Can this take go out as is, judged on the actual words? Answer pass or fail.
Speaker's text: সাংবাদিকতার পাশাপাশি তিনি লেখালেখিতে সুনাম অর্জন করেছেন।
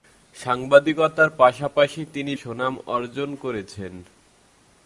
fail